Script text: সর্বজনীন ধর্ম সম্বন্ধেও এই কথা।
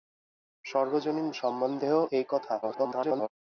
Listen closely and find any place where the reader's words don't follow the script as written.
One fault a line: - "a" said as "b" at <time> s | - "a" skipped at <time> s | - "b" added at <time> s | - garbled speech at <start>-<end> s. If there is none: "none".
- "ধর্ম" skipped at 1.3 s
- garbled speech at 2.6-3.3 s